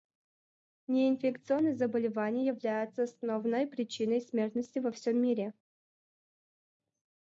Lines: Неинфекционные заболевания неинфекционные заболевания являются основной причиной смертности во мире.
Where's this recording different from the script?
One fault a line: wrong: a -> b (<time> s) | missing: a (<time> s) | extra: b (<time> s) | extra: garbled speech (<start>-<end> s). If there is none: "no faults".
missing: неинфекционные заболевания (2.5 s)
extra: всем (4.9 s)